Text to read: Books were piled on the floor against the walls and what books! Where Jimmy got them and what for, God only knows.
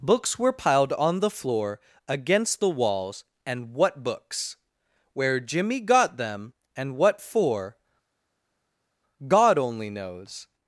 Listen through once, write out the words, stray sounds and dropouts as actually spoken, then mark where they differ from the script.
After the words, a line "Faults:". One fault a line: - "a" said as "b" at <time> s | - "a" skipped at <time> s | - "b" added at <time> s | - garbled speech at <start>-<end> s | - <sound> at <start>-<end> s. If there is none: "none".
Books were piled on the floor against the walls and what books! Where Jimmy got them and what for, God only knows.
Faults:
none